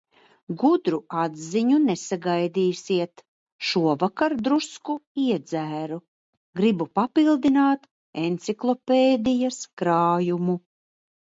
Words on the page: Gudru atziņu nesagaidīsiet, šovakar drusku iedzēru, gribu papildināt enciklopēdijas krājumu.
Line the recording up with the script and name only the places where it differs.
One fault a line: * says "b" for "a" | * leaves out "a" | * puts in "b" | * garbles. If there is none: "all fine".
all fine